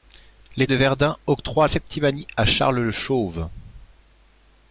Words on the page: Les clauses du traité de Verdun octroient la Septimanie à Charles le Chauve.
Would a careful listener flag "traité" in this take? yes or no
yes